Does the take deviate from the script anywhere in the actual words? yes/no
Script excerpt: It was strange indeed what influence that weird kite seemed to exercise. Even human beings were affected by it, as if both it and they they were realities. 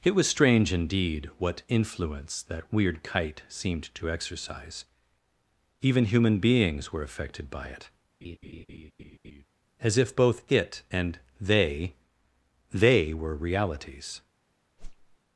no